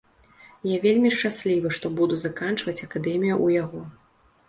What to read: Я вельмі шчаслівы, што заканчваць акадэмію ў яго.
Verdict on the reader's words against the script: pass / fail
fail